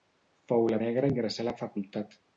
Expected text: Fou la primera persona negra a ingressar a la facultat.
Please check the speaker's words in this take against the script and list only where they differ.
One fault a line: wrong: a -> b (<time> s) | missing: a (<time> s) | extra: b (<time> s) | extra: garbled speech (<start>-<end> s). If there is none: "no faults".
missing: primera persona (0.8 s)